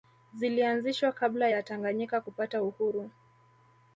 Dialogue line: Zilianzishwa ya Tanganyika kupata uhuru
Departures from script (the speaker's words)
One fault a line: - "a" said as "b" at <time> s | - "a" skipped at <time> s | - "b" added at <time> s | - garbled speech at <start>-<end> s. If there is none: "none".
- "kabla" added at 1.1 s